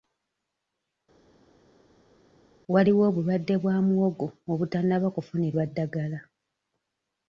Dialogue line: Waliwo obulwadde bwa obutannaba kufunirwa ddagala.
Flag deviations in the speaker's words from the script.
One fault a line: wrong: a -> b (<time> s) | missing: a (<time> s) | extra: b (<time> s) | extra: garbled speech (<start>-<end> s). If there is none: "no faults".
extra: muwogo (3.9 s)